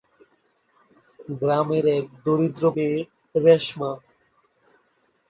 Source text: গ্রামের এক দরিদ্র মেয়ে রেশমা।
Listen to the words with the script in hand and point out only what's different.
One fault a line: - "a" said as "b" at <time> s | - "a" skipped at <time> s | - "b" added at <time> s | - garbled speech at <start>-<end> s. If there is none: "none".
none